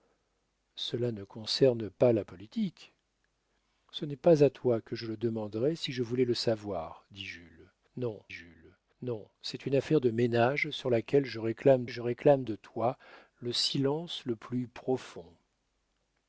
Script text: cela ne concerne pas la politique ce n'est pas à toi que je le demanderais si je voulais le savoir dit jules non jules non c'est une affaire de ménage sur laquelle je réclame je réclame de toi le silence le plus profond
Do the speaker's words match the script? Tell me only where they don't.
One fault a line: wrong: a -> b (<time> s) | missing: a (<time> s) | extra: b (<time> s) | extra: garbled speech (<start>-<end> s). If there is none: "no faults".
no faults